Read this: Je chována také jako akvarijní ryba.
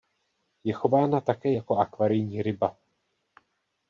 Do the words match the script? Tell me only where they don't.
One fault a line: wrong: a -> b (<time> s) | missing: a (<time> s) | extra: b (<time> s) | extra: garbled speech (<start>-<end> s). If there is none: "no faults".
no faults